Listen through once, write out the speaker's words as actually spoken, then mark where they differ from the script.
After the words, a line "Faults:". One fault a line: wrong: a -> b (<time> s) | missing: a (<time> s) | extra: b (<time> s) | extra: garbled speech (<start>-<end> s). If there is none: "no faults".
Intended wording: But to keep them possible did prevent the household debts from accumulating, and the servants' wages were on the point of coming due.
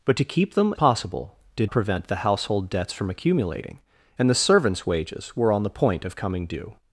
But to keep them possible did prevent the household debts from accumulating, and the servants' wages were on the point of coming due.
Faults:
no faults